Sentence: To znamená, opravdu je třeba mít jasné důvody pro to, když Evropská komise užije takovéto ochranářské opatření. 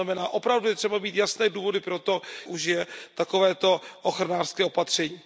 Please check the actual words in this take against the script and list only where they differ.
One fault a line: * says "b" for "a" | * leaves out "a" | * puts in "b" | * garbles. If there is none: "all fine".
* leaves out "když Evropská komise"